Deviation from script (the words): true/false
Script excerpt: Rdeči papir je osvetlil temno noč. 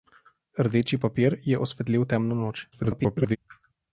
true